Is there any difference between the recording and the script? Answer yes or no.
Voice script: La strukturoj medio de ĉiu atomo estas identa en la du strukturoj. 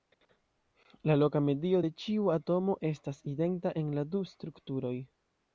yes